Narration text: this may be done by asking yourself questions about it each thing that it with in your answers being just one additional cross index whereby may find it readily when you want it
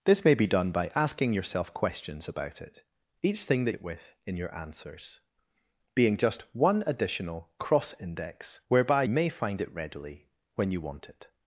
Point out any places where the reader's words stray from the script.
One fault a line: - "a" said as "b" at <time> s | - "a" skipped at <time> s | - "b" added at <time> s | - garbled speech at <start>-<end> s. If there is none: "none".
none